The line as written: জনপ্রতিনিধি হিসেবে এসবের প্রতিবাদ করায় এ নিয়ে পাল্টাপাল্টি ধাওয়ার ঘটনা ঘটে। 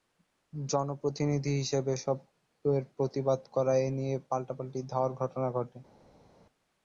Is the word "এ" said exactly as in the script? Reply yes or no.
yes